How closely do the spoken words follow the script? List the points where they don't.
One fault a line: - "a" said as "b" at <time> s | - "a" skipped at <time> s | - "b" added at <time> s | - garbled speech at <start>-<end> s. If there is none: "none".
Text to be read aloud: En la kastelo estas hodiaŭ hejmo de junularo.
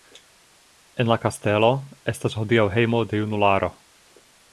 none